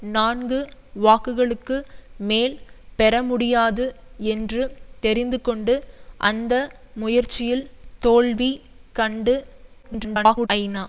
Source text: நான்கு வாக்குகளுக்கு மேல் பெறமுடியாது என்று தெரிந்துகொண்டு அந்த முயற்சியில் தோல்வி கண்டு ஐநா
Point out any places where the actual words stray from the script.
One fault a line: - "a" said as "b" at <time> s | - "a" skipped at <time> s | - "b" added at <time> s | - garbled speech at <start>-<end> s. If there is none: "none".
- garbled speech at 9.8-10.5 s